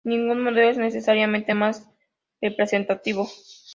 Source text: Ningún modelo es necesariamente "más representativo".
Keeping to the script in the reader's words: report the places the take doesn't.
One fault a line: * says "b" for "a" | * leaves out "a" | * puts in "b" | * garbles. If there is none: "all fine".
all fine